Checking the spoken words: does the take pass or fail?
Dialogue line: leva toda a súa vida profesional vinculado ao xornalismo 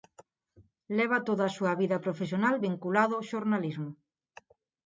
pass